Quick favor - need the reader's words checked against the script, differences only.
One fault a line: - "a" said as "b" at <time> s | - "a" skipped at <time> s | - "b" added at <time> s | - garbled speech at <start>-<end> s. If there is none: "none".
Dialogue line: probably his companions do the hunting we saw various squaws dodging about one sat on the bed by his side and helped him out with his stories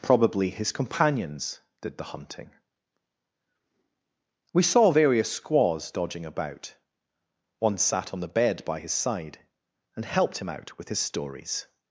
- "do" said as "did" at 1.8 s